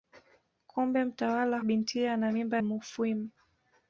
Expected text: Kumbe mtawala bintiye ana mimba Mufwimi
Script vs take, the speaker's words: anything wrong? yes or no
no